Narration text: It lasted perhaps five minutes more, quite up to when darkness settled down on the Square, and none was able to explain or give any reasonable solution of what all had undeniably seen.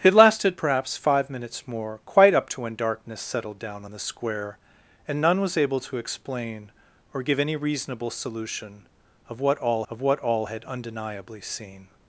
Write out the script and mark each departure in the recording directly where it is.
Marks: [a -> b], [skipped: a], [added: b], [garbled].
It lasted perhaps five minutes more, quite up to when darkness settled down on the Square, and none was able to explain or give any reasonable solution of what all [added: of what all] had undeniably seen.